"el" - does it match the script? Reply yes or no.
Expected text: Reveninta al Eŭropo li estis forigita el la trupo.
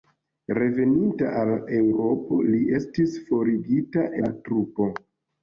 no